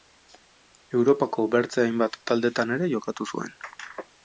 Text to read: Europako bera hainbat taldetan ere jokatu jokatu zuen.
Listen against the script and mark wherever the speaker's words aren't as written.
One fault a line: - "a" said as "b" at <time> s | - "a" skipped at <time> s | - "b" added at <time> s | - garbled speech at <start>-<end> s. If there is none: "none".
- "bera" said as "beste" at 1.6 s
- "jokatu" skipped at 3.3 s